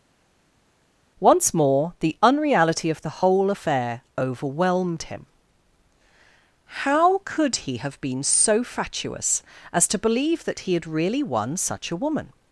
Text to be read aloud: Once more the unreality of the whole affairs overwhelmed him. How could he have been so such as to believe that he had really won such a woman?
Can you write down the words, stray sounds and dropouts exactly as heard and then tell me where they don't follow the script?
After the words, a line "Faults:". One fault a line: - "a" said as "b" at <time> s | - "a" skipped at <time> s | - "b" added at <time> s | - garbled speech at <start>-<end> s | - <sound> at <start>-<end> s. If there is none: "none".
Once more the unreality of the whole affair overwhelmed him. How could he have been so fatuous as to believe that he had really won such a woman?
Faults:
- "affairs" said as "affair" at 3.5 s
- "such" said as "fatuous" at 8.6 s